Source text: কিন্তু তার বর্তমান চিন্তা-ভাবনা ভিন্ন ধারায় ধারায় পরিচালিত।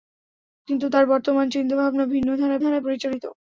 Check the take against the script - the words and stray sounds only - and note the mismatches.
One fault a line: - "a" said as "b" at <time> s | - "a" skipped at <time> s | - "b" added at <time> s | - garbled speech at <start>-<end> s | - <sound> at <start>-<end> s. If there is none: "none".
none